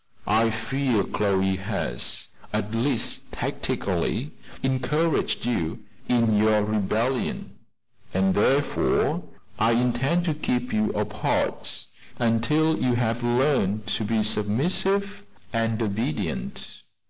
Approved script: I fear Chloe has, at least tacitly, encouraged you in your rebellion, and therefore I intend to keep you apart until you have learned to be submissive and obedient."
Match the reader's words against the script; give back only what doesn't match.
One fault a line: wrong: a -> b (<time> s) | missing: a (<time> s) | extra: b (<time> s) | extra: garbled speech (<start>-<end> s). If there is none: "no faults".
no faults